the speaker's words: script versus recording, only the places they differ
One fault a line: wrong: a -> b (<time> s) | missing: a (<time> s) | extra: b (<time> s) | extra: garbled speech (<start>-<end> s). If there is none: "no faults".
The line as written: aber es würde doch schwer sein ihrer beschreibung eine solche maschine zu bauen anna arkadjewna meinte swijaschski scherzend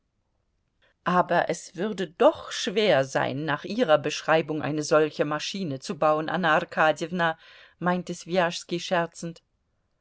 extra: nach (3.5 s)